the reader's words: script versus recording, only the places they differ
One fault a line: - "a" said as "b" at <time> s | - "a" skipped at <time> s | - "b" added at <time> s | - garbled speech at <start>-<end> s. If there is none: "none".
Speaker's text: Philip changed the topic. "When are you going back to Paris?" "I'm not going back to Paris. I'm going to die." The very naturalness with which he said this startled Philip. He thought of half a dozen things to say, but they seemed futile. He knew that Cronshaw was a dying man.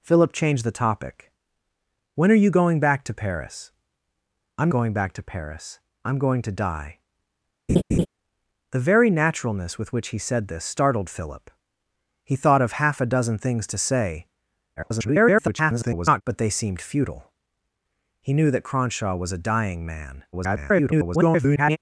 - "not" skipped at 4.7 s
- garbled speech at 14.8-16.2 s
- garbled speech at 20.3-21.8 s